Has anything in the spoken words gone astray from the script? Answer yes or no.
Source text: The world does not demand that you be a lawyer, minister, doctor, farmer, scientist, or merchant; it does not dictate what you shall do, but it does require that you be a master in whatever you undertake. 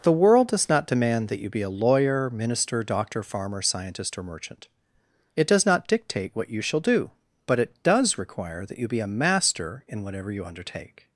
no